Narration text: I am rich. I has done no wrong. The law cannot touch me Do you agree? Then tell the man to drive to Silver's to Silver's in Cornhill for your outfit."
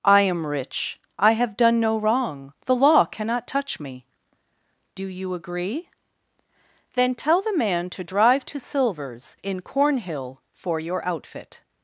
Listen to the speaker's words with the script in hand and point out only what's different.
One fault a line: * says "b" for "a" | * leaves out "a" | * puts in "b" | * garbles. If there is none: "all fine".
* says "have" for "has"
* leaves out "to Silver's"